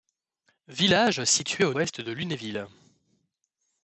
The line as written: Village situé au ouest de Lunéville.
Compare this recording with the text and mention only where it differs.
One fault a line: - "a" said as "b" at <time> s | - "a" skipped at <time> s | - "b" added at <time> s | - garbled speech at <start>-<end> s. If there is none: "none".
none